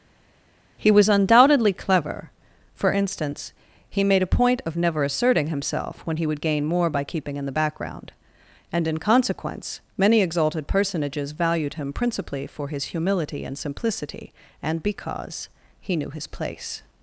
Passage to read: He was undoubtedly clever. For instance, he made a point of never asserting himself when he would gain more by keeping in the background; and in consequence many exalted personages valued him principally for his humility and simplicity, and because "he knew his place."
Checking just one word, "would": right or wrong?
right